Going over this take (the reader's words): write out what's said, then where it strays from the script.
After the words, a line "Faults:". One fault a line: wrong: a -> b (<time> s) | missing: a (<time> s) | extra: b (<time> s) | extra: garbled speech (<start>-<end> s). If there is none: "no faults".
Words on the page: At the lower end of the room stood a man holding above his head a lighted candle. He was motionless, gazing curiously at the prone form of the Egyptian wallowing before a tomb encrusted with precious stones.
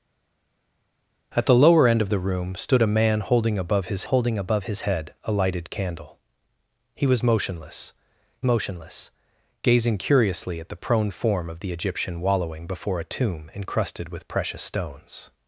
At the lower end of the room stood a man holding above his holding above his head a lighted candle. He was motionless motionless, gazing curiously at the prone form of the Egyptian wallowing before a tomb encrusted with precious stones.
Faults:
extra: holding above his (4.0 s)
extra: motionless (8.4 s)